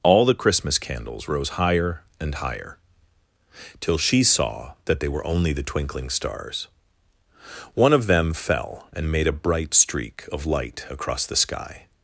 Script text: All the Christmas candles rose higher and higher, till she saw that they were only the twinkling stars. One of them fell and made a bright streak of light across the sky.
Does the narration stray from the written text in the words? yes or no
no